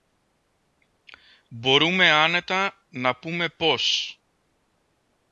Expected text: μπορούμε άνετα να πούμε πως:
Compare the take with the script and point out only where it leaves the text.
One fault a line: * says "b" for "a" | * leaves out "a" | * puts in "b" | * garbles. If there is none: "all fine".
all fine